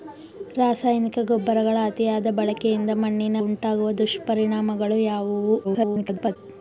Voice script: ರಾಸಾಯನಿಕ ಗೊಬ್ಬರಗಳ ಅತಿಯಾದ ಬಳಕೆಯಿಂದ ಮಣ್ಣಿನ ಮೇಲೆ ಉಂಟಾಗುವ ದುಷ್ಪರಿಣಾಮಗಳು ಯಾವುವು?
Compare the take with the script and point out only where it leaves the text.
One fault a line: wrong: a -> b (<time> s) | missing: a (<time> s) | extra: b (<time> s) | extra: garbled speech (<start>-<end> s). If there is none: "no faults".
missing: ಮೇಲೆ (3.4 s)
extra: garbled speech (5.6-6.4 s)